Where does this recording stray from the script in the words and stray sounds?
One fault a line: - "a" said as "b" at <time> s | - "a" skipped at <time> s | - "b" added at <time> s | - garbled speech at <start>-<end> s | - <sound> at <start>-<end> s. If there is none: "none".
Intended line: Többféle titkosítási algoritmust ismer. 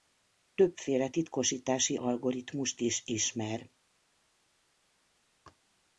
- "is" added at 2.8 s